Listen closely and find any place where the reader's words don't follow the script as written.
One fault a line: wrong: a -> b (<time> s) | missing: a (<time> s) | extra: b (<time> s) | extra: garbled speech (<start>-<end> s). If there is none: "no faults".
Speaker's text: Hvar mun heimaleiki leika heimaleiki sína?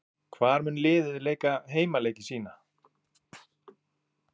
wrong: heimaleiki -> liðið (0.9 s)